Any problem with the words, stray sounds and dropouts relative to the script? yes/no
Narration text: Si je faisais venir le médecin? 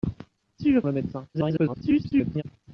yes